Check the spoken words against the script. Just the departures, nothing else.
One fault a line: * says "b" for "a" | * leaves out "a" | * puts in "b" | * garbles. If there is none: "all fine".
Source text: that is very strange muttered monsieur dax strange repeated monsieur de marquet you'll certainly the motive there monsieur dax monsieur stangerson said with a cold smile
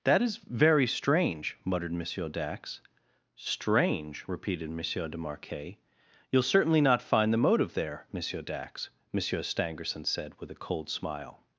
* puts in "not find"